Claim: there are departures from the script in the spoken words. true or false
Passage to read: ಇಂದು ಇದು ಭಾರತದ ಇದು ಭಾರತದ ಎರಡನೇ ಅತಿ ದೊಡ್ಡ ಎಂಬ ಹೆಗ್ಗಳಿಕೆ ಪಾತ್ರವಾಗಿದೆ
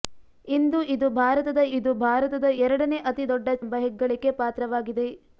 false